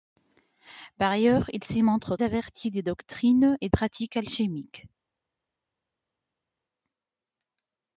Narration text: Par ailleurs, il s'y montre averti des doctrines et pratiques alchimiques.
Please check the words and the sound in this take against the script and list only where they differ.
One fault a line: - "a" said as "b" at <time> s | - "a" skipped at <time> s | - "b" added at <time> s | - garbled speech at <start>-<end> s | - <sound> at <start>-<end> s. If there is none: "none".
none